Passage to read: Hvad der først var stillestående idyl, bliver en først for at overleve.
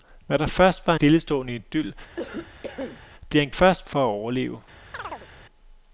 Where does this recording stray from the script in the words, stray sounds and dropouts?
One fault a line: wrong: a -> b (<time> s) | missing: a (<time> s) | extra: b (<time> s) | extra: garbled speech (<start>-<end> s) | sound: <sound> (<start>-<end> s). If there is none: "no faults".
sound: cough (2.2-3.0 s)
sound: chirp (4.9-5.3 s)